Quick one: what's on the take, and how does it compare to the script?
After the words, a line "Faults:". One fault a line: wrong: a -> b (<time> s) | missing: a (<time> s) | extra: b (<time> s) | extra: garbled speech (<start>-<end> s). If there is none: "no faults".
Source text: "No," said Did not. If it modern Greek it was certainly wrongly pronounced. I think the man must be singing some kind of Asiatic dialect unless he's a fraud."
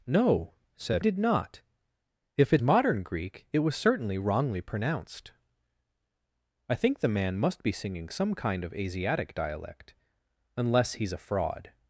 "No," said Did not. If it modern Greek it was certainly wrongly pronounced. I think the man must be singing some kind of Asiatic dialect unless he's a fraud."
Faults:
no faults